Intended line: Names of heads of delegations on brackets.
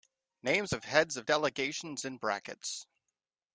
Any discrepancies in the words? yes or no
yes